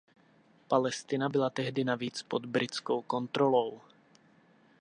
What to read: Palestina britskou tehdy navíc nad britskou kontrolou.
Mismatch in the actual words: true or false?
true